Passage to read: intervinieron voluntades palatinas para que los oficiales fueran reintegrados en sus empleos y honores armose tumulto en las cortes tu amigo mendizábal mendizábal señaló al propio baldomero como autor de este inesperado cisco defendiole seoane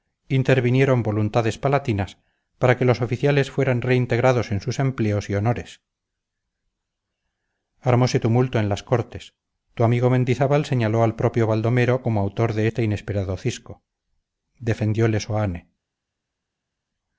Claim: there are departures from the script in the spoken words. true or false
true